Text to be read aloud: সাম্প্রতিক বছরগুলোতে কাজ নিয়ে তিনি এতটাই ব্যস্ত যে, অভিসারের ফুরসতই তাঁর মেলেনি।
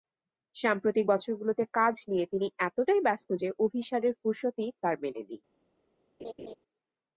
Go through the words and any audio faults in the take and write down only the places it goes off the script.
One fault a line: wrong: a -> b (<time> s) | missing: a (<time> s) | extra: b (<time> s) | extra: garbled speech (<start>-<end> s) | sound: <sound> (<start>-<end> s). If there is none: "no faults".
sound: laugh (6.2-6.6 s)